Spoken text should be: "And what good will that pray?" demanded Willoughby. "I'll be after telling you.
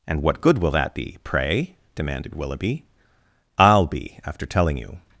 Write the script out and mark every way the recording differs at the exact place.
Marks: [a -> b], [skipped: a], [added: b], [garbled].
"And what good will that [added: be] pray?" demanded Willoughby. "I'll be after telling you.